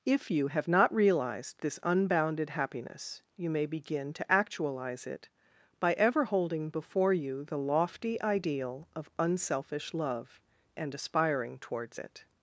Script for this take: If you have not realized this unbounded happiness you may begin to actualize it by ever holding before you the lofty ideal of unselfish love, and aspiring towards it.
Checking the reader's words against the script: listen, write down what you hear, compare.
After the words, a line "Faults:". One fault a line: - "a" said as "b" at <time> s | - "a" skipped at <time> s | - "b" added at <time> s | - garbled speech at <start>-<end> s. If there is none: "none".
If you have not realized this unbounded happiness you may begin to actualize it by ever holding before you the lofty ideal of unselfish love, and aspiring towards it.
Faults:
none